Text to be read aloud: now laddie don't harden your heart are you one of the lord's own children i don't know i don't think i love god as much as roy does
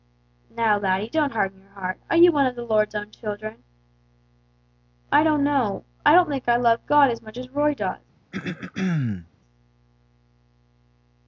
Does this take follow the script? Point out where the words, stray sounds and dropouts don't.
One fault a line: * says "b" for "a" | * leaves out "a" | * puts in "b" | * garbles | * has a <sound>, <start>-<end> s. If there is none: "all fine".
* has a throat clearing, 8.3-9.3 s